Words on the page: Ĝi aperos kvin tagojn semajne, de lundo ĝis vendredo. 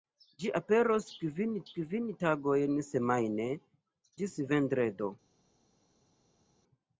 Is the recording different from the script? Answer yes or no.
yes